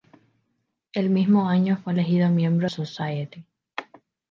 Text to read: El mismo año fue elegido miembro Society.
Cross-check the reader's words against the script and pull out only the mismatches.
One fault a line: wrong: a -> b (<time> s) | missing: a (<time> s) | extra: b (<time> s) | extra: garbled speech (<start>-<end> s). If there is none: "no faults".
no faults